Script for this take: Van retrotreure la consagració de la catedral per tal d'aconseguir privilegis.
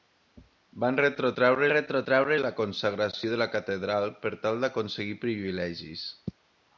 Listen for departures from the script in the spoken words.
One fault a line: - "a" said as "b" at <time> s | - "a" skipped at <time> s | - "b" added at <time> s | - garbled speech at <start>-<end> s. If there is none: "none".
- "retrotreure" added at 1.7 s